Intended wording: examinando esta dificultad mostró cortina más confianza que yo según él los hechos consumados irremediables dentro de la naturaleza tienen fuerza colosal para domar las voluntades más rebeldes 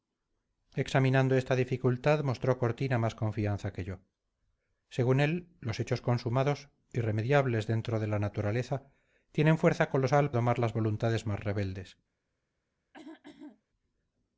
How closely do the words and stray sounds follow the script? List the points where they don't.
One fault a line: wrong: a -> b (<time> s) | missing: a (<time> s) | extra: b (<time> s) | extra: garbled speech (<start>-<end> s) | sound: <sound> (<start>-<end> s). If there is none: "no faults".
missing: para (10.3 s)
sound: throat clearing (12.9-13.6 s)